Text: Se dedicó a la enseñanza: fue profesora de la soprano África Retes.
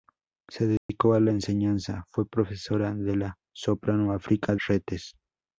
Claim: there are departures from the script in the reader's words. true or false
false